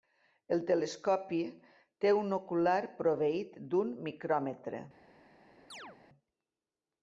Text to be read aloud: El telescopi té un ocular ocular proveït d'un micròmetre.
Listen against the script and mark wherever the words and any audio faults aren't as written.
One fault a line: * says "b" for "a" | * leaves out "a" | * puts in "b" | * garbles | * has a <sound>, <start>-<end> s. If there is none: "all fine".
* leaves out "ocular"
* has a chirp, 5.7-6.0 s